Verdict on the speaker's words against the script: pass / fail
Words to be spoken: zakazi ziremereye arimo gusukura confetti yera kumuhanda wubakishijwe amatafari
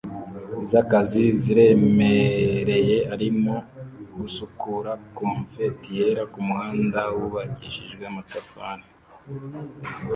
pass